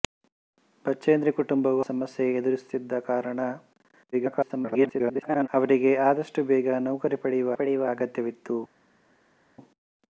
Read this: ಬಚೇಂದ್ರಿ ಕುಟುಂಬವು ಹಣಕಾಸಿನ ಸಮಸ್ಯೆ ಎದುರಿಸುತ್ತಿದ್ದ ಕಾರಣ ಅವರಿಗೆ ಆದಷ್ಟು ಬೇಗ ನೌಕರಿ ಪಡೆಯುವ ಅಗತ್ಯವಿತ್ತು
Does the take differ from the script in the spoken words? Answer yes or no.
yes